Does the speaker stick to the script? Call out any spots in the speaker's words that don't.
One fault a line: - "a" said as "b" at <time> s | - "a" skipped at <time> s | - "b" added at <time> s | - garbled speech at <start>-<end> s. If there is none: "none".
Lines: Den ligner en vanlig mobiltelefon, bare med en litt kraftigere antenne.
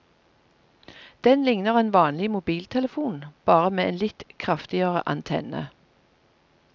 none